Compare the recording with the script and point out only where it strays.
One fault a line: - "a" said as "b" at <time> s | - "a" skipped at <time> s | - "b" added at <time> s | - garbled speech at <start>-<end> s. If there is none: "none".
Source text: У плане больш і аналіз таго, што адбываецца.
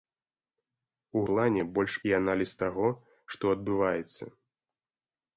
none